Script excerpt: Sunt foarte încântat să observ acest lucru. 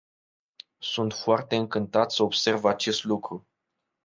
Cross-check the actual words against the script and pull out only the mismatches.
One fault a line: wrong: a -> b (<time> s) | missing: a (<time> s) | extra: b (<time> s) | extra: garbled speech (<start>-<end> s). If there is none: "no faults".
no faults